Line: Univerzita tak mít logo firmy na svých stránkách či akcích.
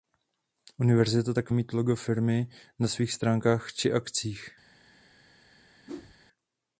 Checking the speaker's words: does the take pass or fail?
pass